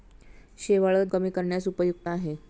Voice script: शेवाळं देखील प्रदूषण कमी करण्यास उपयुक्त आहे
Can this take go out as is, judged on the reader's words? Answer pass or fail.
fail